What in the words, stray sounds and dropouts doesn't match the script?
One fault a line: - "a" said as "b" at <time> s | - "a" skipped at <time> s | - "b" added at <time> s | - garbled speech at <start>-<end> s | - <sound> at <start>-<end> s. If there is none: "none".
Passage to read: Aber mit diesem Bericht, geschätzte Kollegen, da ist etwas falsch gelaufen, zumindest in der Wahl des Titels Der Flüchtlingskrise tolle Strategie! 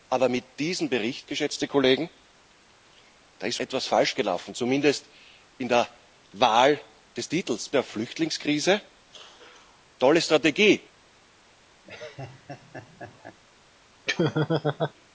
- laugh at 11.8-13.4 s
- laugh at 14.1-14.9 s